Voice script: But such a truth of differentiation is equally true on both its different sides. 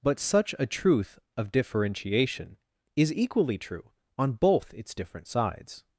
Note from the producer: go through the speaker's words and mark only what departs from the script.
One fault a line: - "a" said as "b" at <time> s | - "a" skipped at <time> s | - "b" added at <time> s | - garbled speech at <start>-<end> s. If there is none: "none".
none